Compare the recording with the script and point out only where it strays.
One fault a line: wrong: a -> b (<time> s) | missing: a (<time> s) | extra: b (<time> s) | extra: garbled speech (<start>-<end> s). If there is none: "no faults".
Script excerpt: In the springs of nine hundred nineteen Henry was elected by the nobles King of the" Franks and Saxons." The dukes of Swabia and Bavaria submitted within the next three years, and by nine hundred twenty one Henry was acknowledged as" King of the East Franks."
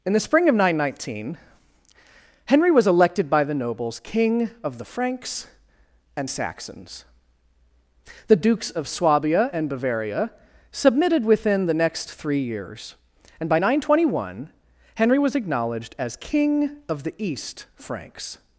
wrong: springs -> spring (0.2 s)